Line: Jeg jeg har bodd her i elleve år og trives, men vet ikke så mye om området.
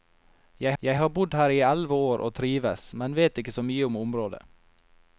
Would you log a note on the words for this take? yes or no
no